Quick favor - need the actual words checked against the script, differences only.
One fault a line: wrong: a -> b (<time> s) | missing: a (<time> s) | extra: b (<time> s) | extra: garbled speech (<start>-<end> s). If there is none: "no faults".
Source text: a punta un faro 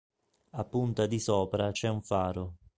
extra: di sopra c'è (1.1 s)